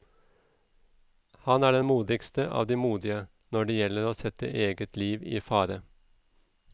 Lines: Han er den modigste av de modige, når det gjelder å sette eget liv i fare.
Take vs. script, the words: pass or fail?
pass